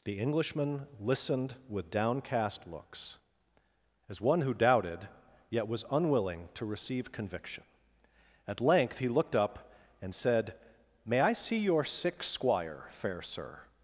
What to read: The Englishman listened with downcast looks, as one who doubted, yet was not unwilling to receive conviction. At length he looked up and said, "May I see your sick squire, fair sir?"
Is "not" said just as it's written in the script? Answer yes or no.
no